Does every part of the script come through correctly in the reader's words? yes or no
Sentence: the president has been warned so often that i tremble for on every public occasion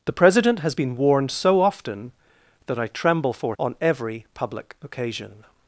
yes